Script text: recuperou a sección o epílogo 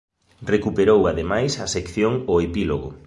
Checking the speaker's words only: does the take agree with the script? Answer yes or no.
no